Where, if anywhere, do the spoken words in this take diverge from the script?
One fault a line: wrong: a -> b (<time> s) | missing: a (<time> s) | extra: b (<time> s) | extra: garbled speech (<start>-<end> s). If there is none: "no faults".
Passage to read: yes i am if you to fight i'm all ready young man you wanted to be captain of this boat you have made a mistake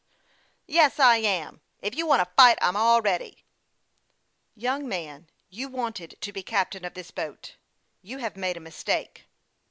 extra: want (2.1 s)